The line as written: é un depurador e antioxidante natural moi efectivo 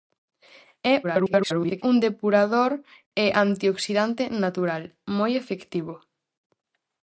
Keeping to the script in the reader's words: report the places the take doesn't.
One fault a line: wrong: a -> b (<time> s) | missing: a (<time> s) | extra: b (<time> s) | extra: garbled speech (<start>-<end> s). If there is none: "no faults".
extra: garbled speech (1.0-1.8 s)